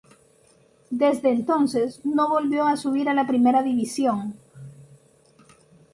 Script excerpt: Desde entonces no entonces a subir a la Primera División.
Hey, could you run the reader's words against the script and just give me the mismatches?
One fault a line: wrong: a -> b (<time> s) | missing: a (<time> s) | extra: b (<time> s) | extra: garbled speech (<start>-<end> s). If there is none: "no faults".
wrong: entonces -> volvió (2.3 s)